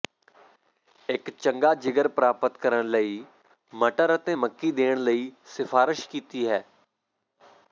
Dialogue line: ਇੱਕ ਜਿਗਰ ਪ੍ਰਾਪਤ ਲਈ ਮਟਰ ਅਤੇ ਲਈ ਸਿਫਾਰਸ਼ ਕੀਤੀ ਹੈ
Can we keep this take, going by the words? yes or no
no